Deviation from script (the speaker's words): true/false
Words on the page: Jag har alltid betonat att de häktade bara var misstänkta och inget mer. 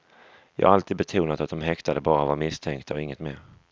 false